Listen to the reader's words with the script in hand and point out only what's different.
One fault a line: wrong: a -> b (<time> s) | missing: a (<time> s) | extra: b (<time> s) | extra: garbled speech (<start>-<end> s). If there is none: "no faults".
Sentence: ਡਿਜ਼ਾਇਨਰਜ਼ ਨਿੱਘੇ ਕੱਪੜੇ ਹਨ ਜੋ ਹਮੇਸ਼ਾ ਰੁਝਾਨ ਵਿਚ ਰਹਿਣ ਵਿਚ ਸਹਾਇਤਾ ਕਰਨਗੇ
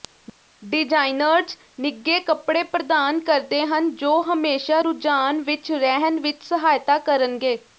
extra: ਪ੍ਰਦਾਨ ਕਰਦੇ (2.7 s)